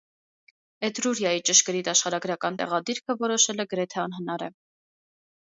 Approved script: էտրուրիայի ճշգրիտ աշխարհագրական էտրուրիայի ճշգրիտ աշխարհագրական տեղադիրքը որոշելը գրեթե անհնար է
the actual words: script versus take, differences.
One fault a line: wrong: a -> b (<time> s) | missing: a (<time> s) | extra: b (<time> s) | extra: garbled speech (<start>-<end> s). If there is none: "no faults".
missing: էտրուրիայի ճշգրիտ աշխարհագրական (2.6 s)